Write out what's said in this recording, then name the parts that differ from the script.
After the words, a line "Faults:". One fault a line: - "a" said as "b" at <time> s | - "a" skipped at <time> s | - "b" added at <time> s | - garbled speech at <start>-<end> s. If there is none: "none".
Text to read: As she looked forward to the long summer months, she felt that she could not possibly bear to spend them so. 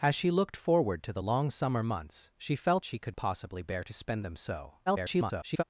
As she looked forward to the long summer months, she felt she could possibly bear to spend them so. [garbled]
Faults:
- "that" skipped at 2.9 s
- "not" skipped at 3.2 s
- garbled speech at 4.9-5.6 s